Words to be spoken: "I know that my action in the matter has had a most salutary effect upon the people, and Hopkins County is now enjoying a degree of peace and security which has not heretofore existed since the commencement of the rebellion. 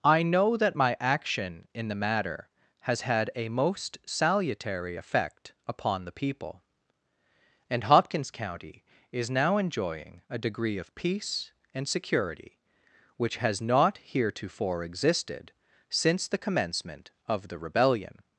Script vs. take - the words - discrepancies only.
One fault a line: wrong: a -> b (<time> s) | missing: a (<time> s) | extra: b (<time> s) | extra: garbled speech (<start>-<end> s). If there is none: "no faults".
no faults